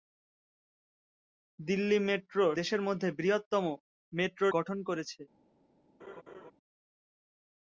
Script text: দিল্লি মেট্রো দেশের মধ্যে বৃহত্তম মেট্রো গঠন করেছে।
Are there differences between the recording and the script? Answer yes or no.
no